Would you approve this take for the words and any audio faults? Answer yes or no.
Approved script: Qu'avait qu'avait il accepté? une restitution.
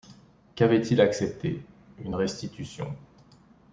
no